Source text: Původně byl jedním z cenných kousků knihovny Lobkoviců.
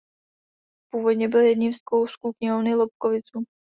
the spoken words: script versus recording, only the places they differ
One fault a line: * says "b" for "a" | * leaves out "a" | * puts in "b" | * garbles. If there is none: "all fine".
* leaves out "cenných"